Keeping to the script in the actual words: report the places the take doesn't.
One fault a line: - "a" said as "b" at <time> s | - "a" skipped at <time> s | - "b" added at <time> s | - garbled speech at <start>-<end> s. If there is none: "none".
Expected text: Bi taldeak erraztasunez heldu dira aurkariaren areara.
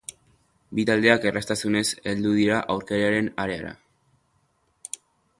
none